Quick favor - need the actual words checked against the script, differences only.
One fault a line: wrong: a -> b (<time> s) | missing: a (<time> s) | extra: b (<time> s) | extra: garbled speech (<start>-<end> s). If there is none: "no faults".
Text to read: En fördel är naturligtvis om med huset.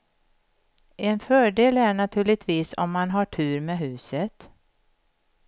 extra: man har tur (2.9 s)